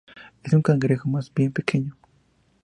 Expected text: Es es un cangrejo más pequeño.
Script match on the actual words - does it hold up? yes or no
no